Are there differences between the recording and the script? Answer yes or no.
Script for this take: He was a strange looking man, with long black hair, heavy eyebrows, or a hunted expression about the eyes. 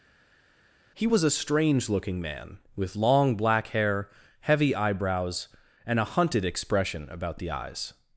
yes